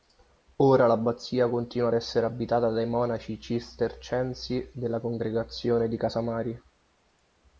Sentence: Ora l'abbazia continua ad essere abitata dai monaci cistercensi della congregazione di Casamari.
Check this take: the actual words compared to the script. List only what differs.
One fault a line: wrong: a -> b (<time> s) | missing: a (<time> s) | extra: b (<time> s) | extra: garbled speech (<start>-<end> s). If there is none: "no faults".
no faults